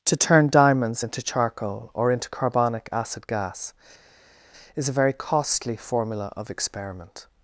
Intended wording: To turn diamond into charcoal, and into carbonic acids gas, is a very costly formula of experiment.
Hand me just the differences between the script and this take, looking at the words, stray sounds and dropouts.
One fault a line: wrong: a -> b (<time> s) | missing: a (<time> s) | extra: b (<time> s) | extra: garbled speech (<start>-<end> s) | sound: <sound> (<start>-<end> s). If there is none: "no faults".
wrong: diamond -> diamonds (0.5 s)
wrong: and -> or (1.9 s)
wrong: acids -> acid (2.9 s)